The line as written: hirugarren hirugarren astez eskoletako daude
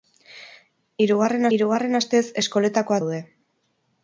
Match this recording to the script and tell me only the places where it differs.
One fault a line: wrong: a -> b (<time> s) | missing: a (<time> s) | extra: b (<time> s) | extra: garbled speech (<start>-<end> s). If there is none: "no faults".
no faults